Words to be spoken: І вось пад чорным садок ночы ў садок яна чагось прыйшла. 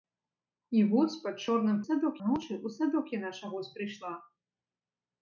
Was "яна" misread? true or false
false